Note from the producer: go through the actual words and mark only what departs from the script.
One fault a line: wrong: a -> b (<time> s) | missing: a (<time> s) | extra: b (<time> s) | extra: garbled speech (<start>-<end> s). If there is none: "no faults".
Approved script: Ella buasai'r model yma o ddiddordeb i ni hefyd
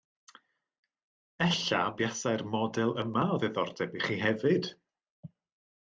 wrong: ni -> chi (4.1 s)